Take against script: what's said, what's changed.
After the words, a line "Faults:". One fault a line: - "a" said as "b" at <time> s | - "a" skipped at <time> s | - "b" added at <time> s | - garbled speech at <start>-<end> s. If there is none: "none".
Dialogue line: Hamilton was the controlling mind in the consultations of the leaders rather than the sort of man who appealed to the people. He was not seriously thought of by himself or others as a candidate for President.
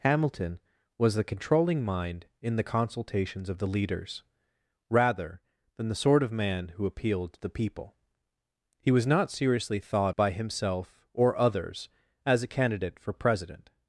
Hamilton was the controlling mind in the consultations of the leaders rather than the sort of man who appealed to the people. He was not seriously thought by himself or others as a candidate for President.
Faults:
- "of" skipped at 10.1 s